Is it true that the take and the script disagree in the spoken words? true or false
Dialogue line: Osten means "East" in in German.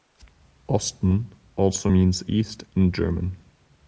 true